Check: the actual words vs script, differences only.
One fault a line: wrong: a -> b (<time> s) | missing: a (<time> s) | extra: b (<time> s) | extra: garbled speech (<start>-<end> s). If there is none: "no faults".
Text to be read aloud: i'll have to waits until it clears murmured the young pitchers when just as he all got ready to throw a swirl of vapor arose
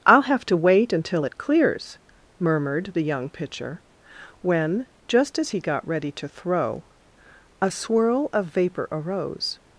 wrong: waits -> wait (0.6 s)
wrong: pitchers -> pitcher (3.3 s)
missing: all (5.6 s)